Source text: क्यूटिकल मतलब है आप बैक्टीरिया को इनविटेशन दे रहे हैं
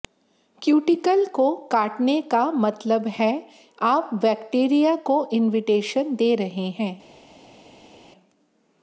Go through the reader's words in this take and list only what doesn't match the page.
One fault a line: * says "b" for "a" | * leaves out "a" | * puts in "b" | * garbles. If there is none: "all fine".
* puts in "को काटने का"